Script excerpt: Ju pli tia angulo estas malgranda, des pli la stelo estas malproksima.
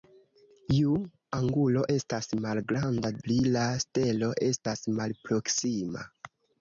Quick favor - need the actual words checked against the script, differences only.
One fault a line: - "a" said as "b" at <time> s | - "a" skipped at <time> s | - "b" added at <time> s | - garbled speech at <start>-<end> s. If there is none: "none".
- "pli tia" skipped at 0.9 s
- "des" skipped at 3.1 s